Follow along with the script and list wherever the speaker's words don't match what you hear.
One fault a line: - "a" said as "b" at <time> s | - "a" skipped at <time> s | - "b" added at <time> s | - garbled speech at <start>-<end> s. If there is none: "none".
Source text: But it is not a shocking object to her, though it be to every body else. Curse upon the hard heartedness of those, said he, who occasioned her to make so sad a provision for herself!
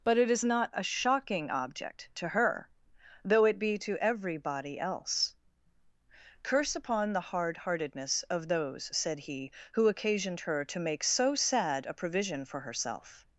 none